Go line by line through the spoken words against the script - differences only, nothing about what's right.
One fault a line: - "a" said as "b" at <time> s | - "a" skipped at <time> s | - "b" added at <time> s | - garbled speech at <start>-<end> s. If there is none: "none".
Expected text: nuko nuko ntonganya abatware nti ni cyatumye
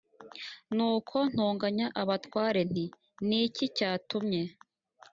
- "nuko" skipped at 1.2 s
- "iki" added at 3.5 s